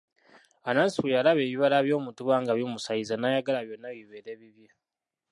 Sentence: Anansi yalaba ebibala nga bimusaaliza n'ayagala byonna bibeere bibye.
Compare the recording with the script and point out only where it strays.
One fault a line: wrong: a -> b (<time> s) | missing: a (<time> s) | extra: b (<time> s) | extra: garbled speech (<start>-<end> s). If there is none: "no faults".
extra: bwe (1.0 s)
extra: by'omutuba (1.9 s)